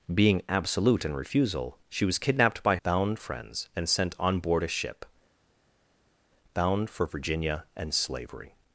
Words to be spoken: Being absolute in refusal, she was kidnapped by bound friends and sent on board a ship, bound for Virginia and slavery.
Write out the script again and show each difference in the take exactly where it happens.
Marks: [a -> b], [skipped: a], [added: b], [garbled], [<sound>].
Being absolute in refusal, she was kidnapped by bound friends and sent on board a ship, bound for Virginia and slavery.